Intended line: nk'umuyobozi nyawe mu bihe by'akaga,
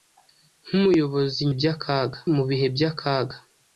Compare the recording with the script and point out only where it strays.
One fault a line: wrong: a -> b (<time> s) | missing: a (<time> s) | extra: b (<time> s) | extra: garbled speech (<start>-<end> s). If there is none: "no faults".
wrong: nyawe -> by'akaga (1.6 s)